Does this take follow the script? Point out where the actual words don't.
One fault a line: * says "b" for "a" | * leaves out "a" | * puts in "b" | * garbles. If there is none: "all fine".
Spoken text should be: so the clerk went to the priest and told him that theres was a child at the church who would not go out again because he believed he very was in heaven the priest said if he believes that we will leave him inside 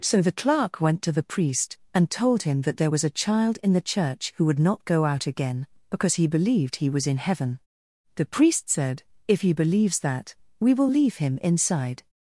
* says "there" for "theres"
* says "in" for "at"
* leaves out "very"